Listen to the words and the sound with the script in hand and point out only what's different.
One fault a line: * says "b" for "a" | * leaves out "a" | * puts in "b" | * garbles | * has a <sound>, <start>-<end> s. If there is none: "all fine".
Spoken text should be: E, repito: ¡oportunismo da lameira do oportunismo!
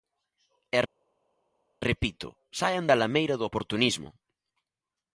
* says "saian" for "oportunismo"